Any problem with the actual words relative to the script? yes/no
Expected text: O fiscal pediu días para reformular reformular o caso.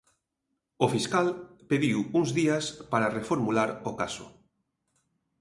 yes